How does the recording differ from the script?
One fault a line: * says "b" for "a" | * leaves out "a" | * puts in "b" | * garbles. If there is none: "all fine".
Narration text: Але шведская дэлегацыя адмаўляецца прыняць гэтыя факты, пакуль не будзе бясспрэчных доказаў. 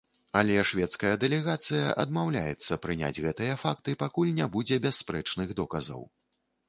all fine